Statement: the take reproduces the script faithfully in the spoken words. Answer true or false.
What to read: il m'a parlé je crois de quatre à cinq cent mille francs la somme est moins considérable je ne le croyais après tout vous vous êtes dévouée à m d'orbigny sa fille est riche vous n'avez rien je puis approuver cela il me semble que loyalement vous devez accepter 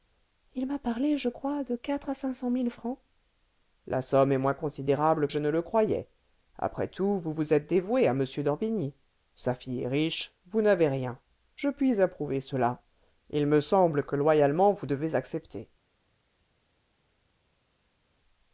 true